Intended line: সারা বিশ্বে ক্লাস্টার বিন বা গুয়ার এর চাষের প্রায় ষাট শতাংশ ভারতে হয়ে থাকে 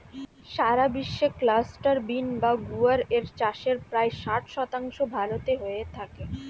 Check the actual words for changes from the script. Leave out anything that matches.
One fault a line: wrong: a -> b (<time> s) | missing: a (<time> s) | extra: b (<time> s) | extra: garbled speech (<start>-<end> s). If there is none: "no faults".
no faults